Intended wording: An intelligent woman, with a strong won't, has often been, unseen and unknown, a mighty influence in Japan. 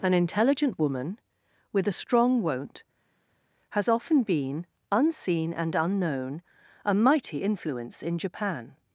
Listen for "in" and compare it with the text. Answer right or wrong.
right